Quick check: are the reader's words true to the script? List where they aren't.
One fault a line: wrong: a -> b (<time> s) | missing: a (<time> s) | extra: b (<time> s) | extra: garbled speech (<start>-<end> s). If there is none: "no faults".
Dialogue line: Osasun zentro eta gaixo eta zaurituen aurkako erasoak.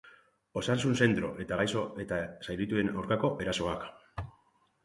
no faults